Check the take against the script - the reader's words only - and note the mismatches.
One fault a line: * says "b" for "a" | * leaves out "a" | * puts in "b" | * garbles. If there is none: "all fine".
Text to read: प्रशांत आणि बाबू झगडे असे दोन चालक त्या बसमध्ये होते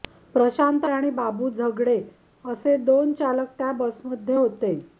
all fine